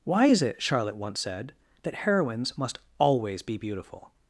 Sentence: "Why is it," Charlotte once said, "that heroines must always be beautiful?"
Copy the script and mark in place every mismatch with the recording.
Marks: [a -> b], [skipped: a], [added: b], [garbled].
"Why is it," Charlotte once said, "that heroines must always be beautiful?"